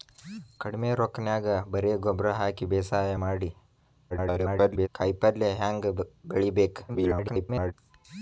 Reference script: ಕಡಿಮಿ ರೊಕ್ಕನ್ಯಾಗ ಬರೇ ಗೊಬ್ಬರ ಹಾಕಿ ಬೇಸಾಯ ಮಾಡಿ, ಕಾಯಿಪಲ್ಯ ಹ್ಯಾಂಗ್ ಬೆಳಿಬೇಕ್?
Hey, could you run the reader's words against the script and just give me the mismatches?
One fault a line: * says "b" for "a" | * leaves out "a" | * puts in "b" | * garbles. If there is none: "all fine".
* garbles
* garbles